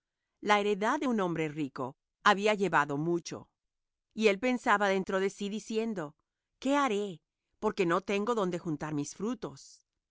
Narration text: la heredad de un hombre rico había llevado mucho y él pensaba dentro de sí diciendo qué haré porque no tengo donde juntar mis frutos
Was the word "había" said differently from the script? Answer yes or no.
no